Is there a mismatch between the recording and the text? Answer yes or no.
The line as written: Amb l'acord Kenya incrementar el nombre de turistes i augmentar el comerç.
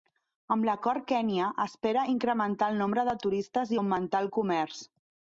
yes